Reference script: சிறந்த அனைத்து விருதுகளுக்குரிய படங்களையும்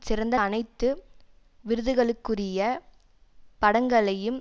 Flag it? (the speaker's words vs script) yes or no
no